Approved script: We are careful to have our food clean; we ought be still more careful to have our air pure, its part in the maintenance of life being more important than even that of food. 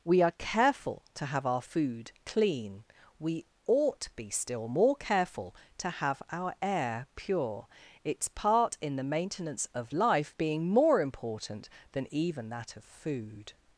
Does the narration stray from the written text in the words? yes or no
no